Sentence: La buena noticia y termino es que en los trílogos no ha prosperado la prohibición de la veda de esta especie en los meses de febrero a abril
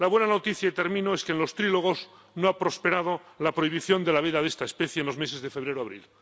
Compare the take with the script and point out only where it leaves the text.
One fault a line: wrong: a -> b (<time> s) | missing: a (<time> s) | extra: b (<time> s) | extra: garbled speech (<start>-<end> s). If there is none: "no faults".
no faults